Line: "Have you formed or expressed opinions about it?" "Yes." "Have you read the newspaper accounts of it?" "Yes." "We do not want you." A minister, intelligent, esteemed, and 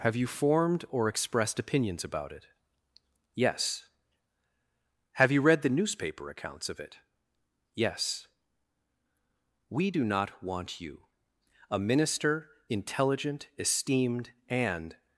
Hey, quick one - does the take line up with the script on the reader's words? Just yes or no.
yes